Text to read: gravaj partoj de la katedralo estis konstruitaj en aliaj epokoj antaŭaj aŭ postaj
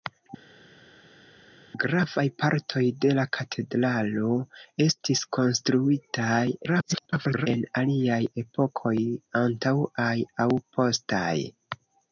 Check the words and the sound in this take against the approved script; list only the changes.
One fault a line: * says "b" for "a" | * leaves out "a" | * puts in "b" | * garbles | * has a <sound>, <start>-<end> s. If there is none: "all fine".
* garbles